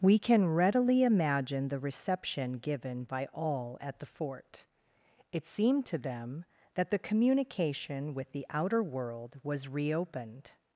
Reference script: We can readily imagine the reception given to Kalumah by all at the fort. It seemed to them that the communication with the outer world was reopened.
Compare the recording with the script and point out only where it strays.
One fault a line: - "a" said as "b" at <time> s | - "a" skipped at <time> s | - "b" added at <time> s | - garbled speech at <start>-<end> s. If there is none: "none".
- "to Kalumah" skipped at 3.0 s